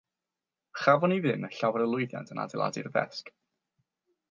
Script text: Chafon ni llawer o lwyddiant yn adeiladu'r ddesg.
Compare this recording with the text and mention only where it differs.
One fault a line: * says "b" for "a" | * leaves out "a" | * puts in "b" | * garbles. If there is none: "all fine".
* puts in "ddim"